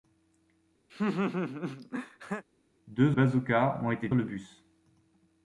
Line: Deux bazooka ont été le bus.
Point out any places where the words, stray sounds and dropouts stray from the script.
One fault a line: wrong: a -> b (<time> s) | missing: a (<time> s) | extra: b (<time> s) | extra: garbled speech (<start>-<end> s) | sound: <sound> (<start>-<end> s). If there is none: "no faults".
sound: laugh (0.9-2.4 s)